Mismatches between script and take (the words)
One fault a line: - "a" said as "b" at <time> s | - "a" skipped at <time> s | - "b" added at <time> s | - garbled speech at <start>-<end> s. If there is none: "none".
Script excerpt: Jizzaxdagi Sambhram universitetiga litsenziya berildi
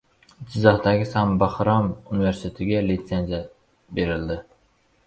none